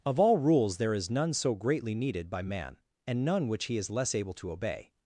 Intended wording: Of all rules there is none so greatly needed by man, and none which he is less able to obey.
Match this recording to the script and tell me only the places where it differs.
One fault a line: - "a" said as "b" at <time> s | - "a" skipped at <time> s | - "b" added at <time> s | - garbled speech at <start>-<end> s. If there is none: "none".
none